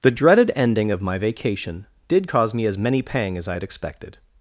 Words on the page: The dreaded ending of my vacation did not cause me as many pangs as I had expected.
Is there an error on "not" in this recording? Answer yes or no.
yes